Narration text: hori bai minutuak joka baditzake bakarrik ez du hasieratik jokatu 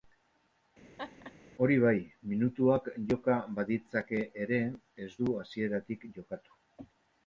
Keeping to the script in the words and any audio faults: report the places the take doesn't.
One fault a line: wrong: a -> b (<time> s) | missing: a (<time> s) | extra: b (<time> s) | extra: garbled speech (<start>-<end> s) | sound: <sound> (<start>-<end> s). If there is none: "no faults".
sound: laugh (1.0-1.3 s)
wrong: bakarrik -> ere (4.5 s)